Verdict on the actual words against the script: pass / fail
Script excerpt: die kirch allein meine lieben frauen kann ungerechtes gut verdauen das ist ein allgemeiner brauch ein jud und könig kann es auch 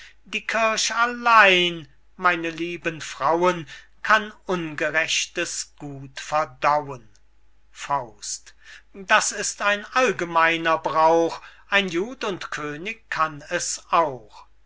pass